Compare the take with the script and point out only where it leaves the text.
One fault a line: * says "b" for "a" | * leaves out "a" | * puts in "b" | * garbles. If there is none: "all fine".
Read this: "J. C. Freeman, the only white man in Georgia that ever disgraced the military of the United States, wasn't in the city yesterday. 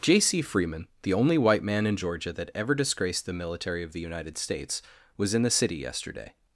* says "was" for "wasn't"